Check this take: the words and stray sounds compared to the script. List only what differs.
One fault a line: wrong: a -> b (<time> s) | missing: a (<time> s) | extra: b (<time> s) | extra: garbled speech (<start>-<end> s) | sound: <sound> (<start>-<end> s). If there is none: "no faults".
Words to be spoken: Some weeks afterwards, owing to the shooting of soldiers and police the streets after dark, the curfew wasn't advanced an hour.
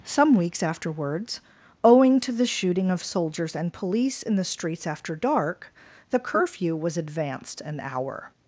extra: in (4.2 s)
wrong: wasn't -> was (6.7 s)